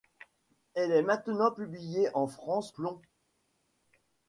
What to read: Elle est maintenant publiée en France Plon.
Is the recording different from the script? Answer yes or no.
no